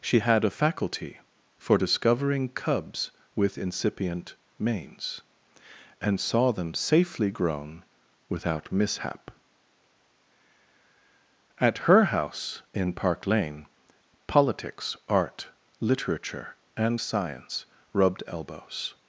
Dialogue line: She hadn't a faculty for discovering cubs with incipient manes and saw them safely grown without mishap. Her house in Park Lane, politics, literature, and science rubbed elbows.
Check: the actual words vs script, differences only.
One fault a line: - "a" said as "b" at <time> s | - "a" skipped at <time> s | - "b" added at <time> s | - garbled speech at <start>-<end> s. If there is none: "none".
- "hadn't" said as "had" at 0.2 s
- "At" added at 11.6 s
- "art" added at 15.1 s